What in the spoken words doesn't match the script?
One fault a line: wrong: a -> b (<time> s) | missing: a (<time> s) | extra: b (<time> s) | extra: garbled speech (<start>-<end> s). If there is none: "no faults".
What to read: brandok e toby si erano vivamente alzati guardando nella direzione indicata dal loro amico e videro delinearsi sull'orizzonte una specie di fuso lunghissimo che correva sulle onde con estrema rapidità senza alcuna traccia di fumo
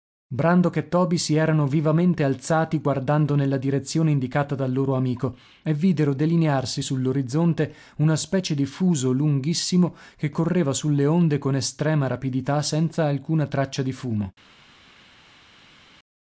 no faults